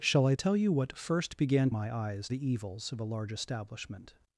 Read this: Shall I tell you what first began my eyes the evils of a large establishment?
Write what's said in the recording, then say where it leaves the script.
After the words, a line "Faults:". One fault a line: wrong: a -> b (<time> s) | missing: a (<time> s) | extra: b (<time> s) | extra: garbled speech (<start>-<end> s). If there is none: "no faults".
Shall I tell you what first began my eyes the evils of a large establishment?
Faults:
no faults